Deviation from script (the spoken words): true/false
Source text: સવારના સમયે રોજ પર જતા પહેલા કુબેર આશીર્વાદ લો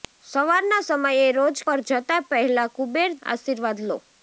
false